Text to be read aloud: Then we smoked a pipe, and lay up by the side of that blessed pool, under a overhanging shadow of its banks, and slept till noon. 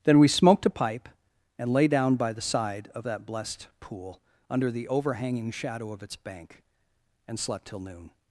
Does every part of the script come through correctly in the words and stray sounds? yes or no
no